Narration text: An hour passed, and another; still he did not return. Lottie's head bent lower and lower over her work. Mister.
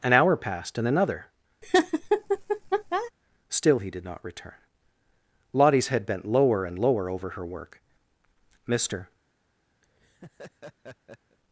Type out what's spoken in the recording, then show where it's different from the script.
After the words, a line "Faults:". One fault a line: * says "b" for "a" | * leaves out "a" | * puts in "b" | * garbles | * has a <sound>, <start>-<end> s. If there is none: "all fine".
An hour passed, and another; still he did not return. Lottie's head bent lower and lower over her work. Mister.
Faults:
* has a laugh, 1.6-3.1 s
* has a laugh, 9.8-11.4 s